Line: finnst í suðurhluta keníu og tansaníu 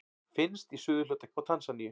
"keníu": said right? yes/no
no